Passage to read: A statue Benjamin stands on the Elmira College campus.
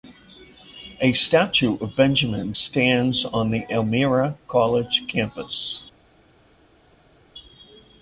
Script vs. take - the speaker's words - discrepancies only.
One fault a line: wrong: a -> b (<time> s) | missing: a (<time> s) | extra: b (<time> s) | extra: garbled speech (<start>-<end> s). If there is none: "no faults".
extra: of (1.8 s)